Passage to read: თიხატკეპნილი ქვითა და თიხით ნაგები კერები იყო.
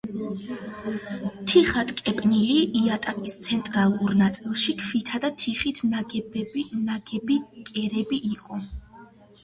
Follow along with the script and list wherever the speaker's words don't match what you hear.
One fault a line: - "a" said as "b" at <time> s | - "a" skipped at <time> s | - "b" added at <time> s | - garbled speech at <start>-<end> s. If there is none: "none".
- "იატაკის ცენტრალურ ნაწილში" added at 2.8 s